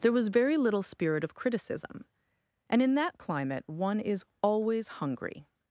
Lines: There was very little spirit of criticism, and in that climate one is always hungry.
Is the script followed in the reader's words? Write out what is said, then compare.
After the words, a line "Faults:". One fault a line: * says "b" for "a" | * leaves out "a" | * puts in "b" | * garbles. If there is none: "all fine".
There was very little spirit of criticism, and in that climate one is always hungry.
Faults:
all fine